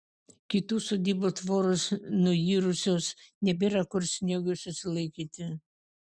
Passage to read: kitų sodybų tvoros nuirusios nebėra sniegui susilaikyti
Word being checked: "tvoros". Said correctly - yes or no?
yes